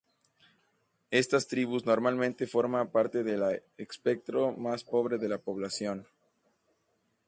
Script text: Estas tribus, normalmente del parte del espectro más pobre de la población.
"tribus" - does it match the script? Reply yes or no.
yes